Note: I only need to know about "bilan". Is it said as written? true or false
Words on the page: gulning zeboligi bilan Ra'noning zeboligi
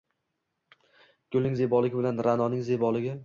true